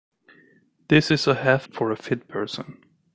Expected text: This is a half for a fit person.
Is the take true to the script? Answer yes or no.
yes